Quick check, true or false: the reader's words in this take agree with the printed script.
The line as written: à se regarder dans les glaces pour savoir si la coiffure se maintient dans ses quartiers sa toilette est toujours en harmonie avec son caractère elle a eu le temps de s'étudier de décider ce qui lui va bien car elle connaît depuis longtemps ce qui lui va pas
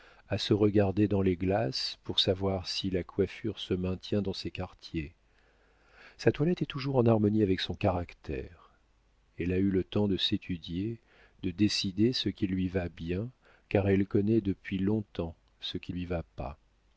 true